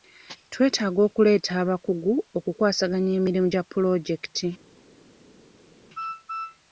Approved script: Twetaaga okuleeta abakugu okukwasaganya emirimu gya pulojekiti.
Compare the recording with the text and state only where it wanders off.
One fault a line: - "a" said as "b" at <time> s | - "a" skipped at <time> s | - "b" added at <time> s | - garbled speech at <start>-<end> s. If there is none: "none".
none